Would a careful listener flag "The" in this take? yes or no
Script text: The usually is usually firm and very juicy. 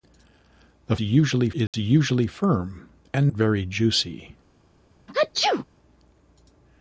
no